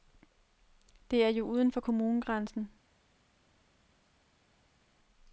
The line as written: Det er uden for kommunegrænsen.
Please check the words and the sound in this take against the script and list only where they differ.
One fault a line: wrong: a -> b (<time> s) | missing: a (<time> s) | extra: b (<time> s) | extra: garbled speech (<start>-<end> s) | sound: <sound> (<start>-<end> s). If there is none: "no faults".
extra: jo (1.3 s)